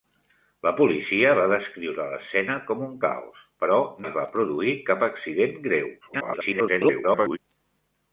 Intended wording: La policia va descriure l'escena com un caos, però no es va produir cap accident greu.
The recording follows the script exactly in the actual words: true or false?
false